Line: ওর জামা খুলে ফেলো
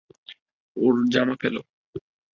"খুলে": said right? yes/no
no